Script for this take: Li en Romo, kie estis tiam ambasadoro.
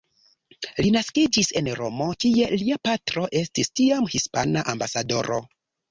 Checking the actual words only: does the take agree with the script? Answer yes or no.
no